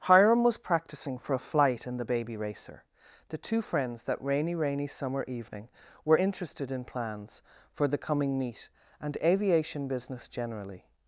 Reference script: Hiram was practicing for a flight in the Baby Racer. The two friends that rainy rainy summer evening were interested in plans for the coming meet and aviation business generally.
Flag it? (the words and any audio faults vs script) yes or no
no